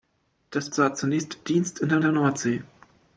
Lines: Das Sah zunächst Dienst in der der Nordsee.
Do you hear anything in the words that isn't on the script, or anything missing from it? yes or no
no